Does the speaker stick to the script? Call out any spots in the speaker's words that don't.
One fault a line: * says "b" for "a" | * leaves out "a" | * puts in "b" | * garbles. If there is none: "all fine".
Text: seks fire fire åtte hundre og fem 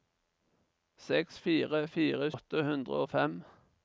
all fine